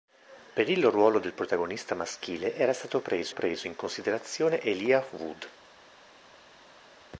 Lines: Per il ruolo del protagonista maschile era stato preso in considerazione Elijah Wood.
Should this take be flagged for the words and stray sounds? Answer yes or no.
yes